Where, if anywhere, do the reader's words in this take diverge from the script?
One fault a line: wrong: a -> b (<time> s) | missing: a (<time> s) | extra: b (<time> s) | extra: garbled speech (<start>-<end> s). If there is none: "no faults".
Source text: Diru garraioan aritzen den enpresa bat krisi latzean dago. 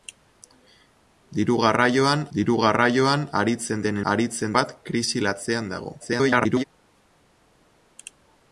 extra: diru garraioan (2.4 s)
wrong: enpresa -> aritzen (4.1 s)
extra: garbled speech (6.0-6.6 s)